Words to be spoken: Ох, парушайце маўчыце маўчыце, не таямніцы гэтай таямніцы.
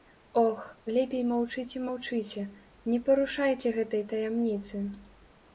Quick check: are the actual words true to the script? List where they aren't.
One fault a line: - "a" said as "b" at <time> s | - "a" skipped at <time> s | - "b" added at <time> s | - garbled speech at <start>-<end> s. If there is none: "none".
- "парушайце" said as "лепей" at 0.9 s
- "таямніцы" said as "парушайце" at 3.1 s